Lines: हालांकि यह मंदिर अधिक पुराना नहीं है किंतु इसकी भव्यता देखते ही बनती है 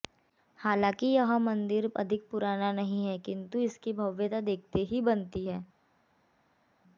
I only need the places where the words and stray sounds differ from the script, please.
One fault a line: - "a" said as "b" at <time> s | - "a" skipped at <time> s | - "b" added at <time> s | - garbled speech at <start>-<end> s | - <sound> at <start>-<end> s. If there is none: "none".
none